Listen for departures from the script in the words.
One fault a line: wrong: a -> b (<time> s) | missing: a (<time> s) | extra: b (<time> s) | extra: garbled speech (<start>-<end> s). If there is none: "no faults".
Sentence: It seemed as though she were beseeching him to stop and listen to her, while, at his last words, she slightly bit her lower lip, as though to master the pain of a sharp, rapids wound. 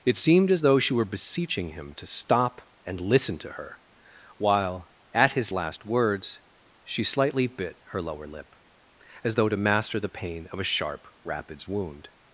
no faults